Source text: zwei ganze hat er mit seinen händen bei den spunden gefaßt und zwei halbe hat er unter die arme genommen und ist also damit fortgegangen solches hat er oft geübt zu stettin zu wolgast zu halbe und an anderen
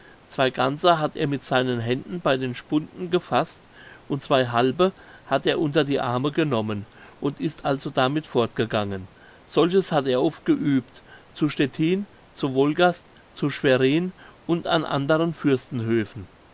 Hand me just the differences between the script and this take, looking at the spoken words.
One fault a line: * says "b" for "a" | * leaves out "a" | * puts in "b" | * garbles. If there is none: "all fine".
* says "schwerin" for "halbe"